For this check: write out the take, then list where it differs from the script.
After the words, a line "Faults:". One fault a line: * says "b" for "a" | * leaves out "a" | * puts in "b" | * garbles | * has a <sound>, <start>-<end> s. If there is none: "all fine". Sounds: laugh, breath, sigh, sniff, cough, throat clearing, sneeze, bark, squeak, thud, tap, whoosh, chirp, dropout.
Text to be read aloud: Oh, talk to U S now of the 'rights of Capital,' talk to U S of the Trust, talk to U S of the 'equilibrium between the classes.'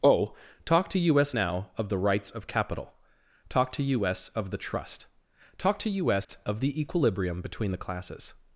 Oh, talk to U S now of the 'rights of Capital,' talk to U S of the Trust, talk to U S of the 'equilibrium between the classes.'
Faults:
* has a dropout, 6.2-6.3 s